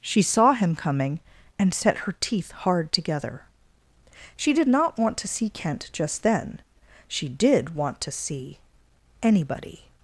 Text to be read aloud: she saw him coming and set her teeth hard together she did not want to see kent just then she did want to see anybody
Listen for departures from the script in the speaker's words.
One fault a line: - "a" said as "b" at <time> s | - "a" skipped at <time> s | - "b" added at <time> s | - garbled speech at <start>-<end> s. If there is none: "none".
none